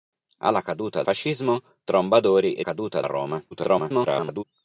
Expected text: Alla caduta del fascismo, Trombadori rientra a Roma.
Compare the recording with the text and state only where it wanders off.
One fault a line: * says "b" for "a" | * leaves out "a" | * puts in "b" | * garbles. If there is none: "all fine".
* leaves out "del"
* says "caduta" for "rientra"
* garbles